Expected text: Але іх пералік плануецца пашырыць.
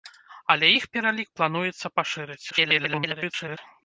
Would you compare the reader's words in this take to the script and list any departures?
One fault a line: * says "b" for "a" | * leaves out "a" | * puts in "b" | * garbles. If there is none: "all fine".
* garbles